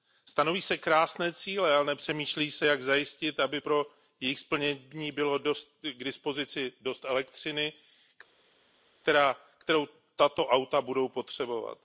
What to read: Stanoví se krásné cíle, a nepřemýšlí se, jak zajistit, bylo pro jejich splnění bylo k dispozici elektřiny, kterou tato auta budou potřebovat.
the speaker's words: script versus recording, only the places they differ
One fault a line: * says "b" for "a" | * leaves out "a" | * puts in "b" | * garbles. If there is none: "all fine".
* says "ale" for "a"
* says "aby" for "bylo"
* puts in "dost"